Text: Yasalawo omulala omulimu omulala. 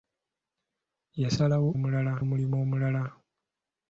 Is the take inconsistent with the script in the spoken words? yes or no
no